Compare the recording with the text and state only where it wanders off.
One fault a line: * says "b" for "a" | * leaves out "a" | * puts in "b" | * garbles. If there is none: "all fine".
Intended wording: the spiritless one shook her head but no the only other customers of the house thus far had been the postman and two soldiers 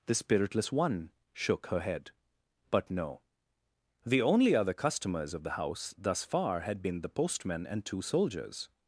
all fine